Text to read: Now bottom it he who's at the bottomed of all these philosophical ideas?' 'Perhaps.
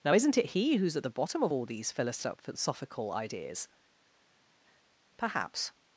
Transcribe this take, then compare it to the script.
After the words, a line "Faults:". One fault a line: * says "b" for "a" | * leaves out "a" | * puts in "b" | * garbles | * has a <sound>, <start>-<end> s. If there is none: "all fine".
Now isn't it he who's at the bottom of all these philosophical ideas?' 'Perhaps.
Faults:
* says "isn't" for "bottom"
* says "bottom" for "bottomed"